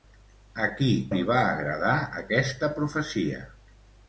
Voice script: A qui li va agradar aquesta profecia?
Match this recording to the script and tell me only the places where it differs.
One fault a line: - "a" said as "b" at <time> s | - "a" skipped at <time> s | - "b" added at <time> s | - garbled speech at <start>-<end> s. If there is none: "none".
none